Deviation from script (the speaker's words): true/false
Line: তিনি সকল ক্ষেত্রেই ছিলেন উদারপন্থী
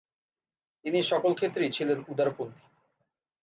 false